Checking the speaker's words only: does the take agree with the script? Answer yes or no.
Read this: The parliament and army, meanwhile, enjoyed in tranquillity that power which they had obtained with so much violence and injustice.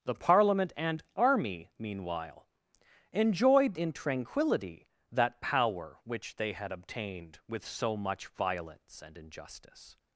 yes